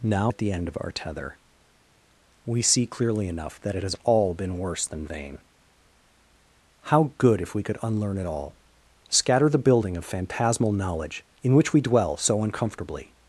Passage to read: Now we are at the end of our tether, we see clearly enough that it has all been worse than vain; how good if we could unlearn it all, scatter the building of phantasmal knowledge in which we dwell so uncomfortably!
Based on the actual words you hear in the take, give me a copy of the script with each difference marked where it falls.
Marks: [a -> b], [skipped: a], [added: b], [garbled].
Now [skipped: we are] at the end of our tether, we see clearly enough that it has all been worse than vain; how good if we could unlearn it all, scatter the building of phantasmal knowledge in which we dwell so uncomfortably!